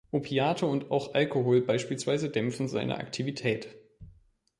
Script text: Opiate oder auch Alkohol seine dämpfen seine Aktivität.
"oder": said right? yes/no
no